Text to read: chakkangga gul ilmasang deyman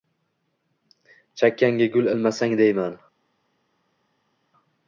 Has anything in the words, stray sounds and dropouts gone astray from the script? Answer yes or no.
no